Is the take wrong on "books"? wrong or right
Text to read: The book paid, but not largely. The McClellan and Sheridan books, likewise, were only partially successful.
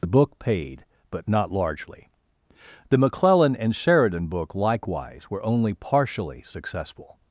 wrong